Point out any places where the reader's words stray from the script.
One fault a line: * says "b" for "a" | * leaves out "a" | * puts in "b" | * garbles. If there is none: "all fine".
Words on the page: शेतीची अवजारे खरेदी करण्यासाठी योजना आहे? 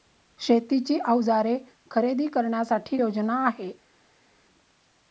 all fine